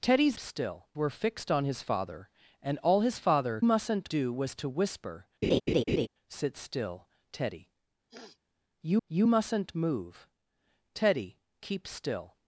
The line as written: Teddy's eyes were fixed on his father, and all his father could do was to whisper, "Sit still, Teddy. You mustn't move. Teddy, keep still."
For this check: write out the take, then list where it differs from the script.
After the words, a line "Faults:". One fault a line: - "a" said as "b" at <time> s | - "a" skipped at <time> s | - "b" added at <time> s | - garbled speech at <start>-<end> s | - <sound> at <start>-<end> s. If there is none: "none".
Teddy's still were fixed on his father, and all his father mustn't do was to whisper, "Sit still, Teddy. You you mustn't move. Teddy, keep still."
Faults:
- "eyes" said as "still" at 0.4 s
- "could" said as "mustn't" at 3.6 s
- laugh at 5.4-6.1 s
- sniff at 8.1-8.4 s
- "you" added at 9.1 s